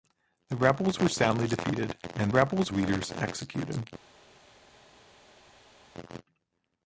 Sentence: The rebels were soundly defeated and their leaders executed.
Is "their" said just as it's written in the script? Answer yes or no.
no